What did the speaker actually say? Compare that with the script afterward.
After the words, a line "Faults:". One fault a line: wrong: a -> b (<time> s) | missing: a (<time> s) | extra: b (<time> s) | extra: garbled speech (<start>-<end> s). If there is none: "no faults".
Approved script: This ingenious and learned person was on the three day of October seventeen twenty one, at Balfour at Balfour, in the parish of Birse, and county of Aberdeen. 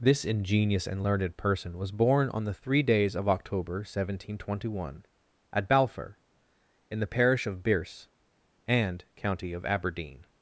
This ingenious and learned person was born on the three days of October seventeen twenty one, at Balfour, in the parish of Birse, and county of Aberdeen.
Faults:
extra: born (1.9 s)
wrong: day -> days (2.8 s)
missing: at Balfour (6.2 s)